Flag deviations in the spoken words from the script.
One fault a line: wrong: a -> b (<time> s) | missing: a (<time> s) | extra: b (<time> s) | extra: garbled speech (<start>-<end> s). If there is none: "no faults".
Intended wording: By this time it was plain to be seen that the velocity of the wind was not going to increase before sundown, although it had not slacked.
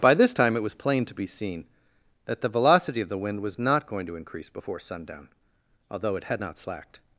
no faults